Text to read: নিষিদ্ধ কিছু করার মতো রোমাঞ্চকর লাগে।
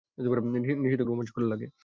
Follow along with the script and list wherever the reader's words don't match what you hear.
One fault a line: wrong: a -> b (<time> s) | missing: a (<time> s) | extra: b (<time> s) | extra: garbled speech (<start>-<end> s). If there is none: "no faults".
missing: কিছু করার মতো (1.0 s)